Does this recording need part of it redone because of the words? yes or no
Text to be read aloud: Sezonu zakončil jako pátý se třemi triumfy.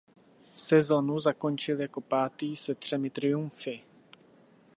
no